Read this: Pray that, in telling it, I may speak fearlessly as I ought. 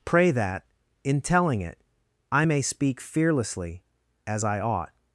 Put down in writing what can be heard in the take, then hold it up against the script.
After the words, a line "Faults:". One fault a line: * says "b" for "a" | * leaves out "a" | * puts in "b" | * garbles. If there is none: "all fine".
Pray that, in telling it, I may speak fearlessly as I ought.
Faults:
all fine